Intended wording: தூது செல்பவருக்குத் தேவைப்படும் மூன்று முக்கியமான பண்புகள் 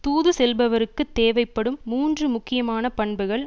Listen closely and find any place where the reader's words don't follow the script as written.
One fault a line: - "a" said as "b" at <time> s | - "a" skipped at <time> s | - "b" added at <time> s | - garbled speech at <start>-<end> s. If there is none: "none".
none